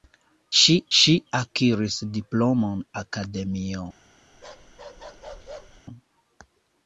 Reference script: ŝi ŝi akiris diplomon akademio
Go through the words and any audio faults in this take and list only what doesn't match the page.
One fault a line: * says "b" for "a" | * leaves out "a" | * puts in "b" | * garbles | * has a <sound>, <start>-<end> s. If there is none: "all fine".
* has a bark, 4.3-5.8 s